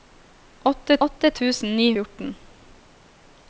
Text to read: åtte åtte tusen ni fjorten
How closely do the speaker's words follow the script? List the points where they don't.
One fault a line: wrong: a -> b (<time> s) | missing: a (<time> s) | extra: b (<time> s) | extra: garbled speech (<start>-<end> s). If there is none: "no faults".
no faults